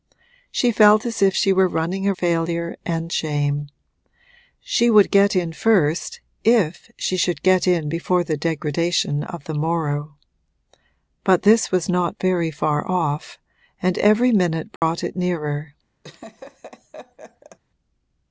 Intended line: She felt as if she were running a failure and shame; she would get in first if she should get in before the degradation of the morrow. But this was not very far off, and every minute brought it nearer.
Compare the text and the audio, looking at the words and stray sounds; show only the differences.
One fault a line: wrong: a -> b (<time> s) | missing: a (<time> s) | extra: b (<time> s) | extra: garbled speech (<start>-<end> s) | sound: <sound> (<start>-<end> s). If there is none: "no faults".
sound: dropout (14.8-14.8 s)
sound: laugh (16.0-17.6 s)